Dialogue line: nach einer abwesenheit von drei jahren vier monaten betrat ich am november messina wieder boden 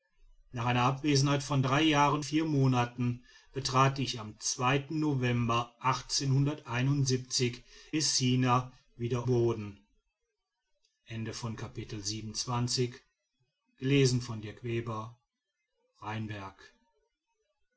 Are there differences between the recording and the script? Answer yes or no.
no